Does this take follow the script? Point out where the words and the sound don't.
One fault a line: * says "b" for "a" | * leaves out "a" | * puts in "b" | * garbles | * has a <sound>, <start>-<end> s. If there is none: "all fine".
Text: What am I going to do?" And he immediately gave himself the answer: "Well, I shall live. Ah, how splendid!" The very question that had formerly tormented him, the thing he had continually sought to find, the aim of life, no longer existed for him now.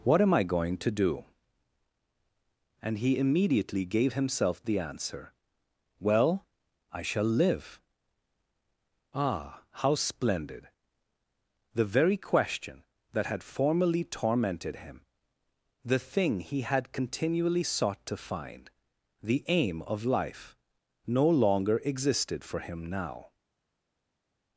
all fine